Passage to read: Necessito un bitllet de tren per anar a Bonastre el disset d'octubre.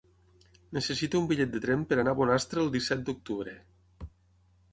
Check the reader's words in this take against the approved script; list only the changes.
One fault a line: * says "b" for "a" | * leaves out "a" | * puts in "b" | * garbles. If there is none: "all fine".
all fine